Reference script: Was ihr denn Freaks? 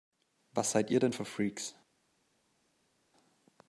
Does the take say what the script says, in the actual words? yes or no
no